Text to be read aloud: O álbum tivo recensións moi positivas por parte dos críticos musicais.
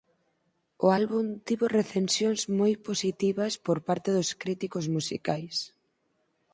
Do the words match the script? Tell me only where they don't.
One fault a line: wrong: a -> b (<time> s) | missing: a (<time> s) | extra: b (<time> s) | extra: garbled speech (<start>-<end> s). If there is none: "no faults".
no faults